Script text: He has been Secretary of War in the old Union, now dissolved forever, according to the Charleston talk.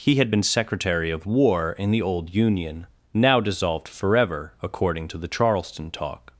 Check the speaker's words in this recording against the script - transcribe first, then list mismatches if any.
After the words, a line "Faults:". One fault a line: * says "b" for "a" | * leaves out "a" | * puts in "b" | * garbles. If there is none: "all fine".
He had been Secretary of War in the old Union, now dissolved forever, according to the Charleston talk.
Faults:
* says "had" for "has"